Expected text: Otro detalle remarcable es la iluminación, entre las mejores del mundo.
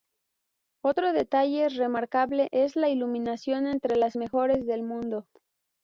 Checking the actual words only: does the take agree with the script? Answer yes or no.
yes